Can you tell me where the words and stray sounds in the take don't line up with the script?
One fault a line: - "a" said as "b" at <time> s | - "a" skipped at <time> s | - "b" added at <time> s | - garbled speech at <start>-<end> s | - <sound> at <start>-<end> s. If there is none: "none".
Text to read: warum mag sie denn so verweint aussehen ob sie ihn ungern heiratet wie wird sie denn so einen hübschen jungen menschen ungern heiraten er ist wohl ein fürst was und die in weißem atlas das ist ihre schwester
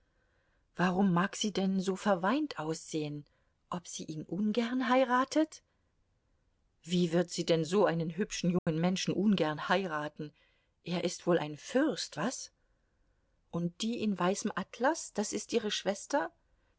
- dropout at 8.6-8.7 s